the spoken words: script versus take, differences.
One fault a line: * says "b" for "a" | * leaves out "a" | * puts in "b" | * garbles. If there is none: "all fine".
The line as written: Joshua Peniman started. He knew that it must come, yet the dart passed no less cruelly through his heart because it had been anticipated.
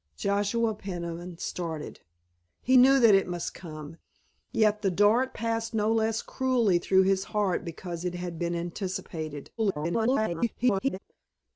* garbles